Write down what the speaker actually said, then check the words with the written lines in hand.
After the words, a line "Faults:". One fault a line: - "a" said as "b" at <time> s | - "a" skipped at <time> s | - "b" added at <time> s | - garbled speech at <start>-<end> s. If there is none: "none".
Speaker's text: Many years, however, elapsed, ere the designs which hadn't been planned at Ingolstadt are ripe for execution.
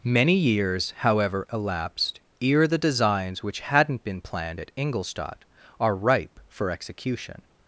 Many years, however, elapsed, ere the designs which hadn't been planned at Ingolstadt are ripe for execution.
Faults:
none